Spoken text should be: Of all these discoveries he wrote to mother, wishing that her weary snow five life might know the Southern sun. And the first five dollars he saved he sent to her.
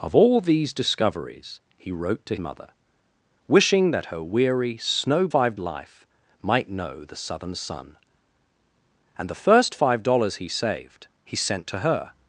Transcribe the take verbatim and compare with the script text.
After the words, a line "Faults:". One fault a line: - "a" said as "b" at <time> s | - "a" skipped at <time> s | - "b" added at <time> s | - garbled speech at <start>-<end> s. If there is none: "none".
Of all these discoveries he wrote to mother, wishing that her weary snow five life might know the Southern sun. And the first five dollars he saved he sent to her.
Faults:
none